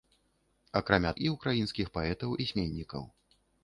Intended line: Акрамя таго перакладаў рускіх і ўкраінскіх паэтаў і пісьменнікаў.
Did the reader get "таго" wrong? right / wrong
wrong